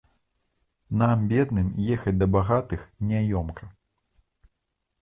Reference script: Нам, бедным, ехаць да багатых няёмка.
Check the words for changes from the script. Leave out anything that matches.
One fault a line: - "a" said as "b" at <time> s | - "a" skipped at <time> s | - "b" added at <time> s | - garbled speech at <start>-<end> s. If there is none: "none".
none